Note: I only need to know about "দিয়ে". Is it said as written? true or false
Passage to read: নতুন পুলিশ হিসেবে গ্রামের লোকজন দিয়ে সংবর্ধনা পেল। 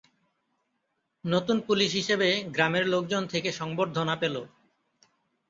false